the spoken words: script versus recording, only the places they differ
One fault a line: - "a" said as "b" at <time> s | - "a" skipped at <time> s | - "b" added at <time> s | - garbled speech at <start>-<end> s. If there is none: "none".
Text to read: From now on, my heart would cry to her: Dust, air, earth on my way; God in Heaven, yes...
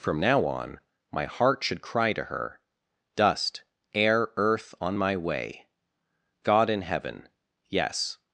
- "would" said as "should" at 1.6 s